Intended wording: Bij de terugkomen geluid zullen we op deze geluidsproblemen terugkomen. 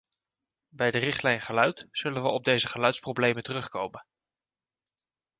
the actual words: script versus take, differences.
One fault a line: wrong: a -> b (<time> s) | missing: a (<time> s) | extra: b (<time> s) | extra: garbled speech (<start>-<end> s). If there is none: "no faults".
wrong: terugkomen -> richtlijn (1.0 s)